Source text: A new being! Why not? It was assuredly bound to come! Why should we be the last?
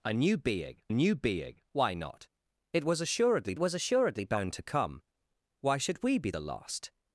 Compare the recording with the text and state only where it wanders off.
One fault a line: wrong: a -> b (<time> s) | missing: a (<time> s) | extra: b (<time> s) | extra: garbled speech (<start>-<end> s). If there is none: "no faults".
extra: new being (0.9 s)
extra: was assuredly (3.6 s)